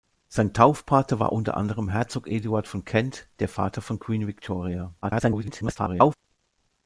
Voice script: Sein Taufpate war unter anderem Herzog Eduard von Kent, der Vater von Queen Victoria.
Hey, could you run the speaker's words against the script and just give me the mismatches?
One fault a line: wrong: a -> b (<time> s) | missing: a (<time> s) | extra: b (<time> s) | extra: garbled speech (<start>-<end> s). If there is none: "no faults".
extra: garbled speech (5.0-6.1 s)